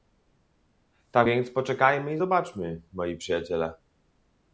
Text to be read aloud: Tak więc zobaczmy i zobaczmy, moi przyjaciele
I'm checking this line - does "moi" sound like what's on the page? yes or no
yes